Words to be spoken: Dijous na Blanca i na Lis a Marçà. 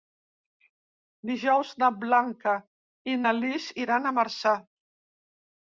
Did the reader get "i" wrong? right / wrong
right